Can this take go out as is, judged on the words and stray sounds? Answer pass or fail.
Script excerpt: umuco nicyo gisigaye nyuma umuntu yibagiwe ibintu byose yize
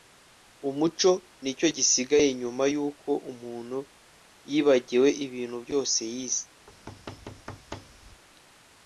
fail